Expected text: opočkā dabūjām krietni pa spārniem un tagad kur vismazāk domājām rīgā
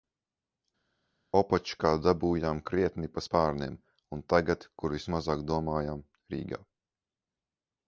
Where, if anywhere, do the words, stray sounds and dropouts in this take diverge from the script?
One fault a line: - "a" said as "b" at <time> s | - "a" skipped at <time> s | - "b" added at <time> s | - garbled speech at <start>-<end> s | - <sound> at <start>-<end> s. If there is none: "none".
none